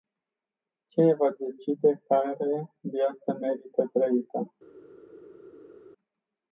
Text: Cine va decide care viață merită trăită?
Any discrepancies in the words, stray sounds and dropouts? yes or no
no